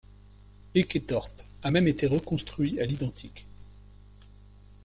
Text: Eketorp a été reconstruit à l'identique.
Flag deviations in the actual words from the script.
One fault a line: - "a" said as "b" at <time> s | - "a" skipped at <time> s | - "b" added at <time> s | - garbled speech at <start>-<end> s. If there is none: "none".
- "même" added at 1.7 s